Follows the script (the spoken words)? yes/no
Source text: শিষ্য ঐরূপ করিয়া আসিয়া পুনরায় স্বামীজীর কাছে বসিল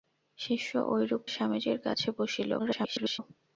no